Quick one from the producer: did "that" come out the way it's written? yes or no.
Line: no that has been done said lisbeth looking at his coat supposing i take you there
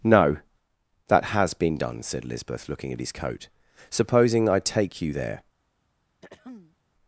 yes